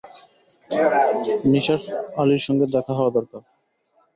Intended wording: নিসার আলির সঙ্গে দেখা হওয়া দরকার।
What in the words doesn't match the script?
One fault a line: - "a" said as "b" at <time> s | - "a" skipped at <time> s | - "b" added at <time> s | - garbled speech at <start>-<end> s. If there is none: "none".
none